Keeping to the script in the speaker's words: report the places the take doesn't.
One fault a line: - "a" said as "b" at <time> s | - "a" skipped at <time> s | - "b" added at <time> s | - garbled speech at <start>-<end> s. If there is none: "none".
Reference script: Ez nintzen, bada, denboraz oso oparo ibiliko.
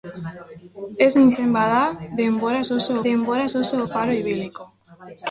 - "denboraz oso" added at 3.1 s